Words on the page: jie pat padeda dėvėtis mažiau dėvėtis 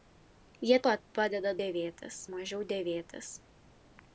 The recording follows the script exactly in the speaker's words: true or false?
true